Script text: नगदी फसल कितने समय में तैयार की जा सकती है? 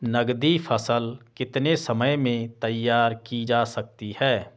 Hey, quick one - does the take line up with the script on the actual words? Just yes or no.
yes